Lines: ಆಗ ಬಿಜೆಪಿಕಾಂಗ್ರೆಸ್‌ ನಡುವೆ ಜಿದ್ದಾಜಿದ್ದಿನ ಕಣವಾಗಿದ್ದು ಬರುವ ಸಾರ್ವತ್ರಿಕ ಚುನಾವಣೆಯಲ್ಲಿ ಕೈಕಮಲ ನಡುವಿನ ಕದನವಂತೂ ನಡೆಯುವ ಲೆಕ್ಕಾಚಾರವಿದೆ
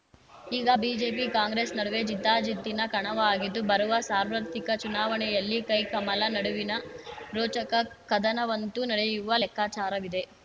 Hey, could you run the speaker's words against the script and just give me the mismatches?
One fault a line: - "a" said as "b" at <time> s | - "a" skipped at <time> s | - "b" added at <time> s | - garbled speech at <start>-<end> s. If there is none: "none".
- "ಆಗ" said as "ಈಗ" at 0.5 s
- "ರೋಚಕ" added at 7.3 s